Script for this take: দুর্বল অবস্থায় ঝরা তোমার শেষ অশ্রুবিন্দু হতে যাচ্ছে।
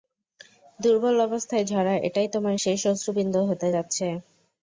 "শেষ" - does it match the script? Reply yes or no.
yes